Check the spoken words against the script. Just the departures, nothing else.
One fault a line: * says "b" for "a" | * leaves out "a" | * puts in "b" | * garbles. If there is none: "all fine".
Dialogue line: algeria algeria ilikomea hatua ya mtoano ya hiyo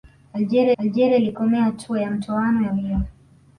all fine